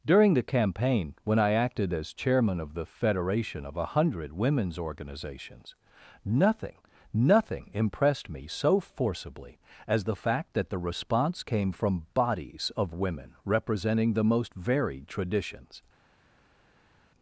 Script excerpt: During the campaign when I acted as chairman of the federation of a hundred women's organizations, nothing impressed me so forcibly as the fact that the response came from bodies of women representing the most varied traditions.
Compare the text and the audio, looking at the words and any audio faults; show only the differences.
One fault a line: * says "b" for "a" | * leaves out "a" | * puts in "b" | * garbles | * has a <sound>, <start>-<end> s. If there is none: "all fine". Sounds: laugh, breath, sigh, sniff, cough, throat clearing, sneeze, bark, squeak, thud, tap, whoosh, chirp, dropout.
* puts in "nothing"